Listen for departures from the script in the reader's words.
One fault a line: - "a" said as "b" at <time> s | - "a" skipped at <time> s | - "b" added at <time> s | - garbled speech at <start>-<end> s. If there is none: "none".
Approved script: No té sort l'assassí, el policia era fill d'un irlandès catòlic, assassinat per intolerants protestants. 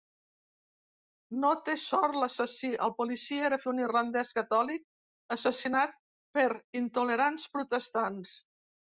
- "fill" skipped at 3.6 s